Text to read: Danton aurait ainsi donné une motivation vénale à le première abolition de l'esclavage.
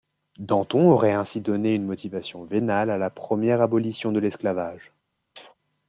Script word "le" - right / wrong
wrong